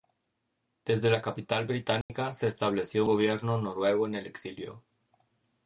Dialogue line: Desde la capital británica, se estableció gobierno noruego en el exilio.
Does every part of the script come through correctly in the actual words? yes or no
yes